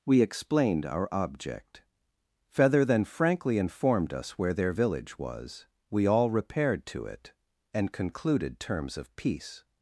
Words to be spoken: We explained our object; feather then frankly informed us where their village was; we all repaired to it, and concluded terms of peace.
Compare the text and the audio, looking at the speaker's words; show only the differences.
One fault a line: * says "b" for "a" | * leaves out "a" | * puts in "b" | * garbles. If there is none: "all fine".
all fine